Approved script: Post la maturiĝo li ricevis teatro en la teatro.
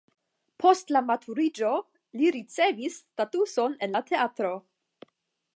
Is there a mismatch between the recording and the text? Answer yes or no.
yes